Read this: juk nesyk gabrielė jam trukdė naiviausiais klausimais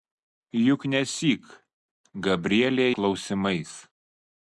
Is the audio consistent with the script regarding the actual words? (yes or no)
no